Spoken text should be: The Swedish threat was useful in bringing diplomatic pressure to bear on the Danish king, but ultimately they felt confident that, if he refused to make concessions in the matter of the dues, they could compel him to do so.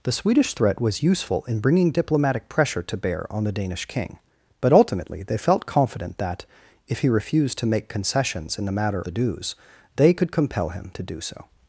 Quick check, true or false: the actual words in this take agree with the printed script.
false